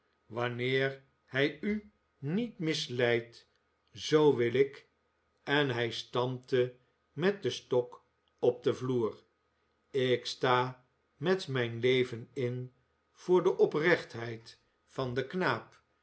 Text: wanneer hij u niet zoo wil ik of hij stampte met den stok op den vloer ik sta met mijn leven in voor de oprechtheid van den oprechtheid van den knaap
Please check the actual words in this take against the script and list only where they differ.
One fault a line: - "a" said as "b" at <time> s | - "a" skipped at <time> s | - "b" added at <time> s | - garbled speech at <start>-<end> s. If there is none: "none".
- "misleidt" added at 2.6 s
- "of" said as "en" at 5.4 s
- "oprechtheid van den" skipped at 15.3 s